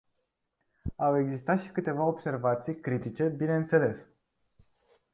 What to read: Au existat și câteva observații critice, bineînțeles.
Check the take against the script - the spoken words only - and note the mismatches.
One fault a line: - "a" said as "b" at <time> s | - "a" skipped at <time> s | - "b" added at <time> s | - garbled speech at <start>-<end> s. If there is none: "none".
none